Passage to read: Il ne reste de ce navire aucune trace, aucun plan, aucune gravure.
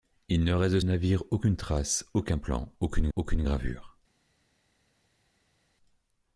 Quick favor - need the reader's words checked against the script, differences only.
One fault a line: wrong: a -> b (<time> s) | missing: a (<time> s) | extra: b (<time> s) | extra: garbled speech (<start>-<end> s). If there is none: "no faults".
missing: ce (0.8 s)
extra: aucune (3.1 s)